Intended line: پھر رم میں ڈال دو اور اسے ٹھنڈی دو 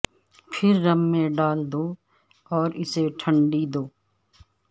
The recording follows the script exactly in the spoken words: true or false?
true